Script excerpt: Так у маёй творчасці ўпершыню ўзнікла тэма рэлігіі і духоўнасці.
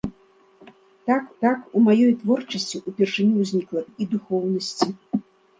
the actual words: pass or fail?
fail